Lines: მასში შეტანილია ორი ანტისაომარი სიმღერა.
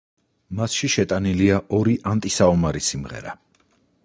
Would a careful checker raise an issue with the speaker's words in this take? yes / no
no